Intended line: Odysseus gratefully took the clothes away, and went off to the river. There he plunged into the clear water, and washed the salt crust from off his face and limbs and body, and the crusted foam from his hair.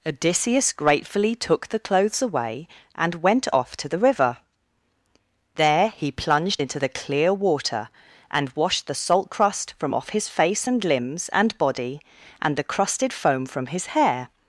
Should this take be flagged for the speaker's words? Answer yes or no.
no